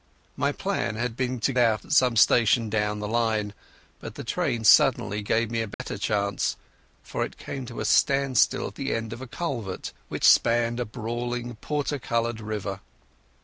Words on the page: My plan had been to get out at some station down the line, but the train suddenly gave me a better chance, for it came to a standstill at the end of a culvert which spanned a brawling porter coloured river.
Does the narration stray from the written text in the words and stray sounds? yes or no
yes